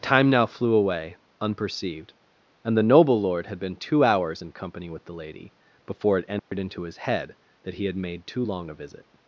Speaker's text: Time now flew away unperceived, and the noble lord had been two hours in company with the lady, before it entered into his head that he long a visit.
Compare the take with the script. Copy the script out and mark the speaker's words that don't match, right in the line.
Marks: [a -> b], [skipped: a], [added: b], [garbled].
Time now flew away unperceived, and the noble lord had been two hours in company with the lady, before it entered into his head that he [added: had made too] long a visit.